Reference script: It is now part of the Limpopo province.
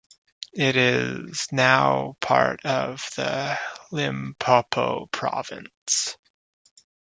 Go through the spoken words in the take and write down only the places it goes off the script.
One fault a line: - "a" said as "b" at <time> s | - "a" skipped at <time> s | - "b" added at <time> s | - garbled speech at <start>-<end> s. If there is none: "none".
none